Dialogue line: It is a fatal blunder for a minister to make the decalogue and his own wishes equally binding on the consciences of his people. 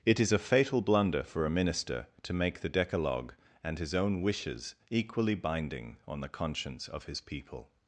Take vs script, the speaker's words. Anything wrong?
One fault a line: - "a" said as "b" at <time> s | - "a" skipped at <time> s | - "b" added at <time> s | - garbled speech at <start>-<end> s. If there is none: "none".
- "consciences" said as "conscience" at 6.3 s